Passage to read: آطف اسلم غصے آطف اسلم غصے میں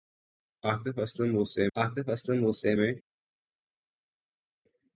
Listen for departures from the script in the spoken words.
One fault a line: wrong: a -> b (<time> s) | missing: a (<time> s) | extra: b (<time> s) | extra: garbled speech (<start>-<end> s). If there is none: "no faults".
no faults